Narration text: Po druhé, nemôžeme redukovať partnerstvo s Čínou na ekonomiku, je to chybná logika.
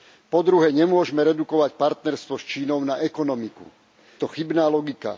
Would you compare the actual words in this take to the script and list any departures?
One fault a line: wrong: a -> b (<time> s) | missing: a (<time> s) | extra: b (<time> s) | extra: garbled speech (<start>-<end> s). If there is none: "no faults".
missing: je (3.7 s)